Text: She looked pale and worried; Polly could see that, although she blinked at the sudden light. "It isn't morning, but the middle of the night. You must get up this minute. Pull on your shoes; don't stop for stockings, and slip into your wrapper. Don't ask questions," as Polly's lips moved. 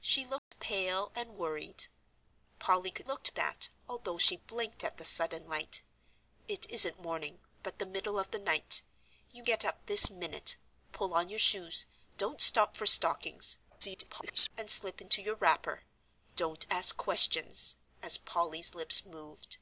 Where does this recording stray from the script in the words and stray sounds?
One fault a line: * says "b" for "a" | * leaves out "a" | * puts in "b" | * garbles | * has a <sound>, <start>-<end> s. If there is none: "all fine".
* has a dropout, 0.4-0.5 s
* says "looked" for "see"
* leaves out "must"
* garbles